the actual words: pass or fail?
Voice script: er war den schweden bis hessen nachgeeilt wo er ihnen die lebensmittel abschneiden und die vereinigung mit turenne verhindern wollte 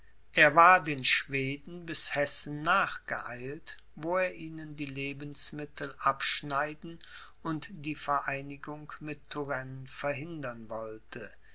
pass